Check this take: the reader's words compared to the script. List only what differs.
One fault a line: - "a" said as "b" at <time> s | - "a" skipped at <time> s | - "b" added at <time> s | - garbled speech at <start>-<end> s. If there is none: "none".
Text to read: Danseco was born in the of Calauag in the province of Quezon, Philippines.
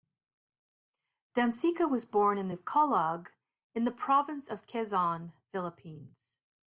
none